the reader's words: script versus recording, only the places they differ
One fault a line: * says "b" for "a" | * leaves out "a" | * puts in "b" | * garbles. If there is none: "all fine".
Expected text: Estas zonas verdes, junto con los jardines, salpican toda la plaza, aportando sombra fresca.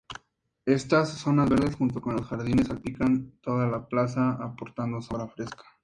all fine